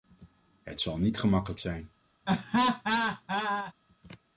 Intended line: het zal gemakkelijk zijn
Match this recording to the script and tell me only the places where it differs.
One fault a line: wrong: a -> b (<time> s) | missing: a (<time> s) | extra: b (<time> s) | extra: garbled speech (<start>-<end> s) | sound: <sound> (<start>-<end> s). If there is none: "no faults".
extra: niet (1.0 s)
sound: laugh (2.3-3.7 s)